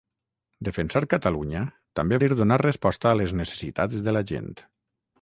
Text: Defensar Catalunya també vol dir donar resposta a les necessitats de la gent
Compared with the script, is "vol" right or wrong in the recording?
wrong